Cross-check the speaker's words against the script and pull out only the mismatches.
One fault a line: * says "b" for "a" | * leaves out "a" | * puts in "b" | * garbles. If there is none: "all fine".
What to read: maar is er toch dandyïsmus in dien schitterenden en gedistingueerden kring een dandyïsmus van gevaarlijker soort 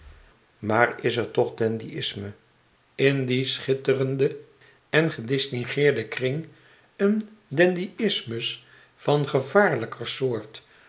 all fine